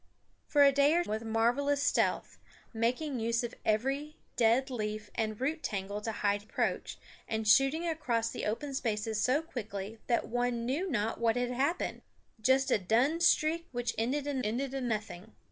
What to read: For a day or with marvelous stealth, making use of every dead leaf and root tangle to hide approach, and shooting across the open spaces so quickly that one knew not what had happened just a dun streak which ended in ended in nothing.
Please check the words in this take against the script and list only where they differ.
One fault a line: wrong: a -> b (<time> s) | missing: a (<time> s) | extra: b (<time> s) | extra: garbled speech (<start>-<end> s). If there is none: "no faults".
no faults